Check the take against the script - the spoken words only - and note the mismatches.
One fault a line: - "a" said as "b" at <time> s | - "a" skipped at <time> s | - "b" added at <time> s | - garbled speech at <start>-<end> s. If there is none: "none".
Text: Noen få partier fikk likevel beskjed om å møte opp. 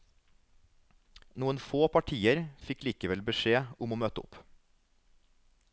none